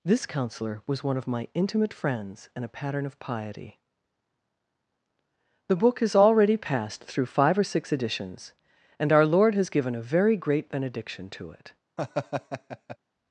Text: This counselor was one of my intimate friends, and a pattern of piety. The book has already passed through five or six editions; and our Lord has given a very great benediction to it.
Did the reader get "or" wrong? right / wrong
right